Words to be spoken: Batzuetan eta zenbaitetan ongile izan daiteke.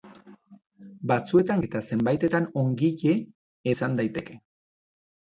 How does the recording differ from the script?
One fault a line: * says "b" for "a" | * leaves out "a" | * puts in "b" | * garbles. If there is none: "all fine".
all fine